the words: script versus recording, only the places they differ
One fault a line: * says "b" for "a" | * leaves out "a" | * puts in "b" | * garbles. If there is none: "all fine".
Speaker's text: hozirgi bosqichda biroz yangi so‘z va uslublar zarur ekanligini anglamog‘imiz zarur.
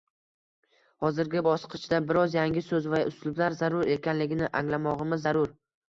all fine